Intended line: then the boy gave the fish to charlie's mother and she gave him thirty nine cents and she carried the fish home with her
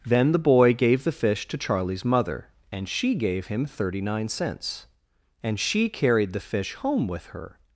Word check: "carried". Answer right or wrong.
right